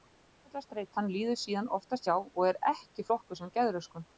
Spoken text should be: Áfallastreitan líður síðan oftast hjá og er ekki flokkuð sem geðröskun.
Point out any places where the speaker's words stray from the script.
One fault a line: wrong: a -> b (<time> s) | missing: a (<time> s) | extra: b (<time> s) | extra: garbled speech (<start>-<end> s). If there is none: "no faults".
no faults